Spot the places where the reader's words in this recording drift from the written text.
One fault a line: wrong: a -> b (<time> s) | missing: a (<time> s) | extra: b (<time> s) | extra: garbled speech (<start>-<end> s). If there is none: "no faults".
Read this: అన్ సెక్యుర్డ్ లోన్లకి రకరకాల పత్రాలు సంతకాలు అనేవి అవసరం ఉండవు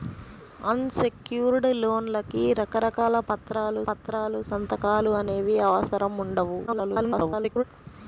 extra: పత్రాలు (3.9 s)
extra: garbled speech (6.7-7.6 s)